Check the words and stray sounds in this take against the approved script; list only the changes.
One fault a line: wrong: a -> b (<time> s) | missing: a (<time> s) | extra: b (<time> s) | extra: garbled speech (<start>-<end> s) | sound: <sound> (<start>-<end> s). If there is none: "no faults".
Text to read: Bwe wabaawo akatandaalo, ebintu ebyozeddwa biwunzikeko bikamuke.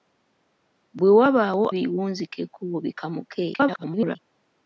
missing: akatandaalo ebintu ebyozeddwa (1.6 s)
extra: garbled speech (3.5-4.2 s)